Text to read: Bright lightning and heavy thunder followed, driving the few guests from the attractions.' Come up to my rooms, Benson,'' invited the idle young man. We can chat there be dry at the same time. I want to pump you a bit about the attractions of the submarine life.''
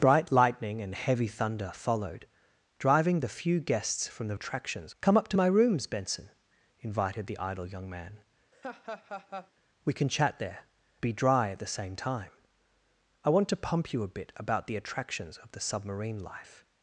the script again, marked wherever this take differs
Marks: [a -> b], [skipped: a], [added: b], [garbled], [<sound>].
Bright lightning and heavy thunder followed, driving the few guests from the attractions.' Come up to my rooms, Benson,'' invited the idle young man. [laugh] We can chat there be dry at the same time. I want to pump you a bit about the attractions of the submarine life.''